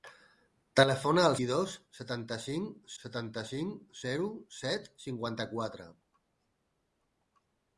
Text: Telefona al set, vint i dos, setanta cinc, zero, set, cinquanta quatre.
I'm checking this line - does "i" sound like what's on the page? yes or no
no